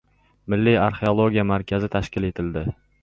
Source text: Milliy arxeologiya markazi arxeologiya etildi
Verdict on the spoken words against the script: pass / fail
fail